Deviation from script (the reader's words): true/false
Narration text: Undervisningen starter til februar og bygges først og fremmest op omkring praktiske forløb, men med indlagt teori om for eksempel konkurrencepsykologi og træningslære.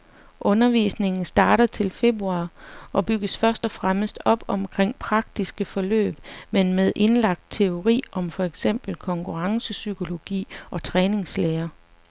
false